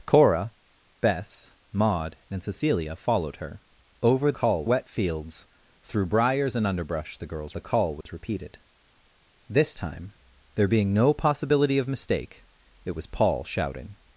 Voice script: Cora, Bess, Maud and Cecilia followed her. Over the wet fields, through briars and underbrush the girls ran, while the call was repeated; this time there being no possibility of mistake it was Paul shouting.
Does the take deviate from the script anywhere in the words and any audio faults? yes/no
yes